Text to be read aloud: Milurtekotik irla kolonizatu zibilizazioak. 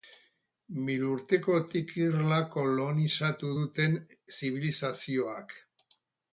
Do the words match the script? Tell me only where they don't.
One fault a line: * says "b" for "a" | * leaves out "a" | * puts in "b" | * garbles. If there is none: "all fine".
* puts in "duten"